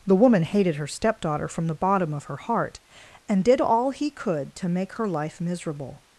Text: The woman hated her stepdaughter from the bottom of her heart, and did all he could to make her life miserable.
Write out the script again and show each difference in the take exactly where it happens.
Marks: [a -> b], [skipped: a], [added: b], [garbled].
The woman hated her stepdaughter from the bottom of her heart, and did all he could to make her life miserable.